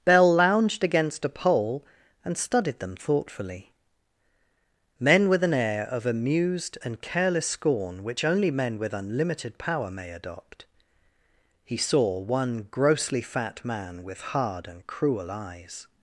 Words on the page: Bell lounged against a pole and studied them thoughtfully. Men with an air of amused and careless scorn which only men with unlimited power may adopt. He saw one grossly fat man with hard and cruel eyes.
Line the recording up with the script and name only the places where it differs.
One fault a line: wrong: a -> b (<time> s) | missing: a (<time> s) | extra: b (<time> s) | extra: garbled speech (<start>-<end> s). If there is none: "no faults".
no faults